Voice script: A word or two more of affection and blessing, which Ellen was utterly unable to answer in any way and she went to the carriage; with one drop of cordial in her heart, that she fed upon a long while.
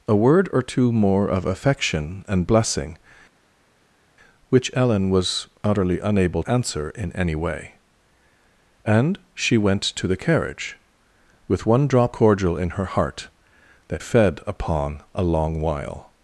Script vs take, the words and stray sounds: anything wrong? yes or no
yes